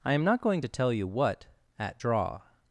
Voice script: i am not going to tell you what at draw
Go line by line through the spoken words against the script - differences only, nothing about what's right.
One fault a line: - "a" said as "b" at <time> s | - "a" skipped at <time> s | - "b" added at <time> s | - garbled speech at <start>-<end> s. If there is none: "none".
none